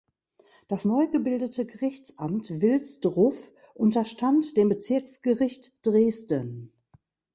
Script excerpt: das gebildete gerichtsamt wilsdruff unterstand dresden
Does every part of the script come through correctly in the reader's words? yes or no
no